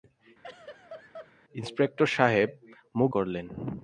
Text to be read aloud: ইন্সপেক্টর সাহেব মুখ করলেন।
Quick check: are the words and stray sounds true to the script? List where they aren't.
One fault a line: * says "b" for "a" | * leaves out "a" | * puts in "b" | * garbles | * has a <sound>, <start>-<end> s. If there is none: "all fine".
* has a laugh, 0.4-1.3 s